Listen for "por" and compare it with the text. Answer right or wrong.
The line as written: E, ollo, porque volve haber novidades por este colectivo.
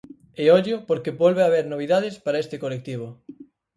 wrong